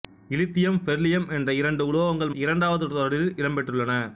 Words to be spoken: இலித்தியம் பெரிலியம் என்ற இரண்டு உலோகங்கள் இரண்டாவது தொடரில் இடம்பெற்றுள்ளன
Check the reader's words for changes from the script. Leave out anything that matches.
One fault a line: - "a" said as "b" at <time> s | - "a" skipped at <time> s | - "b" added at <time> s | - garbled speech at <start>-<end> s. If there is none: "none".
none